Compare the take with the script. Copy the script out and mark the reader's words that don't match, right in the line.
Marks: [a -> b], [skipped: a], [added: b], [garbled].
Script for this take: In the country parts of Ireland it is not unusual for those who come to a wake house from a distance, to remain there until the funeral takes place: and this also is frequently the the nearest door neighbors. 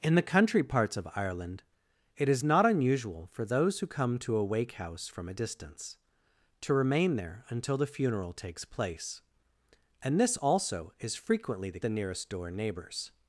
In the country parts of Ireland it is not unusual for those who come to a wake house from a distance, to remain there until the funeral takes place: and this also is frequently the the nearest door neighbors.